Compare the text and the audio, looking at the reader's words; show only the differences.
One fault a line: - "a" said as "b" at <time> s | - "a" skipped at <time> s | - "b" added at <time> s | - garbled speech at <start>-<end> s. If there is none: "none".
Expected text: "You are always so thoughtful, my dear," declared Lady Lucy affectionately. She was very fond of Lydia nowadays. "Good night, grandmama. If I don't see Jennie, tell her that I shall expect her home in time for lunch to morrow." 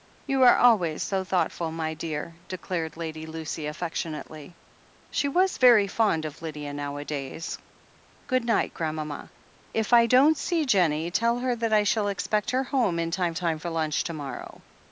- "time" added at 13.3 s